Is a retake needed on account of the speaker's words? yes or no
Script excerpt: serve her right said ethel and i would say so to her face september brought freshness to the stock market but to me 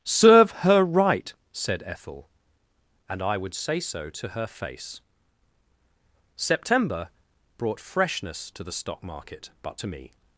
no